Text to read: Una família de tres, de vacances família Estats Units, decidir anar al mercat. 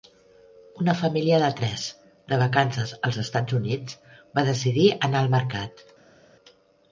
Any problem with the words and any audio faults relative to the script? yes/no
yes